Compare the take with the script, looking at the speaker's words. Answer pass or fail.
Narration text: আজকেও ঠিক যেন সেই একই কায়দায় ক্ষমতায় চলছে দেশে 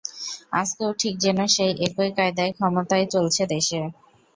pass